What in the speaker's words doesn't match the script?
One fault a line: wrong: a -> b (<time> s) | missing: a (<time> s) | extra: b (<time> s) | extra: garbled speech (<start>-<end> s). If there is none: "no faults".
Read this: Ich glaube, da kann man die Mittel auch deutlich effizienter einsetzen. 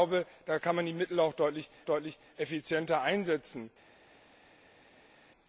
extra: deutlich (1.8 s)